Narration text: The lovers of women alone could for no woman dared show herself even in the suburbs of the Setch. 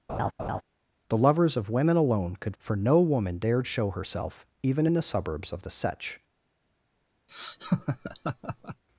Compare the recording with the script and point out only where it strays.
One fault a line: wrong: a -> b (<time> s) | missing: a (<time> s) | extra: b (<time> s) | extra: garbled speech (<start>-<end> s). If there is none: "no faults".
no faults